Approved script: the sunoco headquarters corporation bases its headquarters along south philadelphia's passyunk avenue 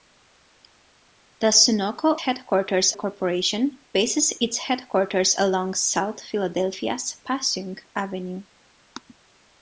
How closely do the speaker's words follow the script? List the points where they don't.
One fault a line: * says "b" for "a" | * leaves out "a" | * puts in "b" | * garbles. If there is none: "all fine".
all fine